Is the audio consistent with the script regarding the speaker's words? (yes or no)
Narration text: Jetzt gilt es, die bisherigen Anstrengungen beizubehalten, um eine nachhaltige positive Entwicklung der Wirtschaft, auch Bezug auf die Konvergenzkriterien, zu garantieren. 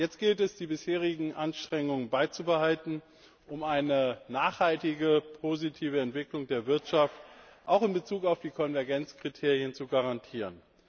no